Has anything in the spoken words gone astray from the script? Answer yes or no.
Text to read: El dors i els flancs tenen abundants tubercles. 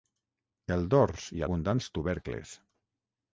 yes